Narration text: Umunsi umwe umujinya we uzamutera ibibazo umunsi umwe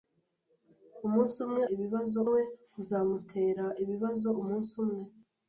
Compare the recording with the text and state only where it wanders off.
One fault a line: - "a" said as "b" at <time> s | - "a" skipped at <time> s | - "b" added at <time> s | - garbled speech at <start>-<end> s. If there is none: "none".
- "umujinya" said as "ibibazo" at 1.7 s